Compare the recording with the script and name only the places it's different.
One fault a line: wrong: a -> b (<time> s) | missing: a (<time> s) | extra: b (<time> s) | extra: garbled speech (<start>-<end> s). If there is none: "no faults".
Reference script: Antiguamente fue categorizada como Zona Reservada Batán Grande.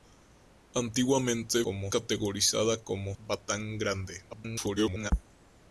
wrong: fue -> como (1.6 s)
missing: Zona Reservada (3.1 s)
extra: garbled speech (4.3-5.1 s)